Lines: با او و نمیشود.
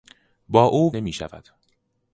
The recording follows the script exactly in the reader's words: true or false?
true